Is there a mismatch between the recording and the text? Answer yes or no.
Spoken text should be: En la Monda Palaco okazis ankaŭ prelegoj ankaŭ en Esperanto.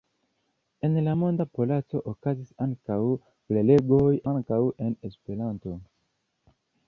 no